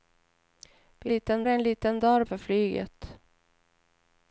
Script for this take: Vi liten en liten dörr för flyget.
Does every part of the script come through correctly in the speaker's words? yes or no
yes